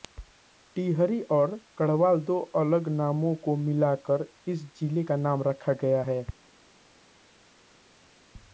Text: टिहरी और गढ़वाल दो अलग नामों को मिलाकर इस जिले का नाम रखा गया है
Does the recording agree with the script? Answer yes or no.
yes